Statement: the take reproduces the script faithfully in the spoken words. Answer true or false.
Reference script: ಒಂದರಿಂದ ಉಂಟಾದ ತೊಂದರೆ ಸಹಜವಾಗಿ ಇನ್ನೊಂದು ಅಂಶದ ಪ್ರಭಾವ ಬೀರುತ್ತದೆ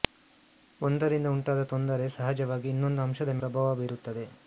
true